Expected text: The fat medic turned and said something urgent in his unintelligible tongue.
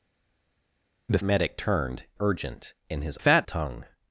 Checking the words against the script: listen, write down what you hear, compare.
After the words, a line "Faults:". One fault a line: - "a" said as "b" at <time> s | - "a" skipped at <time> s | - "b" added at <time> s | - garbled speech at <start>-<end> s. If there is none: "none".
The medic turned urgent in his fat tongue.
Faults:
- "fat" skipped at 1.2 s
- "and said something" skipped at 2.0 s
- "unintelligible" said as "fat" at 3.2 s